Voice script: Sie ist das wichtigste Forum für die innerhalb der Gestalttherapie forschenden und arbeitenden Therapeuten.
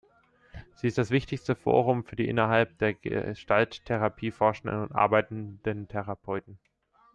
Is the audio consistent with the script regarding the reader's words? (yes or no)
yes